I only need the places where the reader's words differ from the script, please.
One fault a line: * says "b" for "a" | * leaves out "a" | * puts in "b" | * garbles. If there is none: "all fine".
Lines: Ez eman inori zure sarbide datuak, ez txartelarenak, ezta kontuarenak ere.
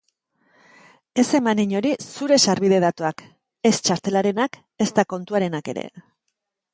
all fine